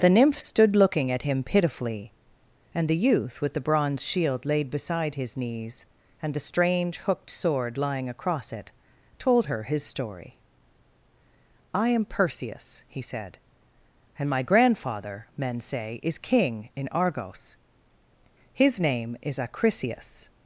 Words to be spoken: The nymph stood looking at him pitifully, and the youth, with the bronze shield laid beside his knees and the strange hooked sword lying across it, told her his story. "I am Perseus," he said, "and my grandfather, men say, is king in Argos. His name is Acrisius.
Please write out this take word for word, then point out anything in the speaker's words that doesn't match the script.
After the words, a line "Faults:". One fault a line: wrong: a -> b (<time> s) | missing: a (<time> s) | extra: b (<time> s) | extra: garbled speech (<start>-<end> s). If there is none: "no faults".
The nymph stood looking at him pitifully, and the youth, with the bronze shield laid beside his knees and the strange hooked sword lying across it, told her his story. "I am Perseus," he said, "and my grandfather, men say, is king in Argos. His name is Acrisius.
Faults:
no faults